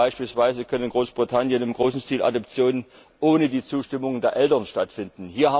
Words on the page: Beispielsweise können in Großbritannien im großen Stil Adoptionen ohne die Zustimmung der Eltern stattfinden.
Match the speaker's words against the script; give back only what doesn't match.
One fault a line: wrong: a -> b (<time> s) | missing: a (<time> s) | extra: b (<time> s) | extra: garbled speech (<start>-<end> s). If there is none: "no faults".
no faults